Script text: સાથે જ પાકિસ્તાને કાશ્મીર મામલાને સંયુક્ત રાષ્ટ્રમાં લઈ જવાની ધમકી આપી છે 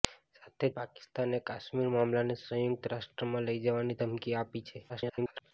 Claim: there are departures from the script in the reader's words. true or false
true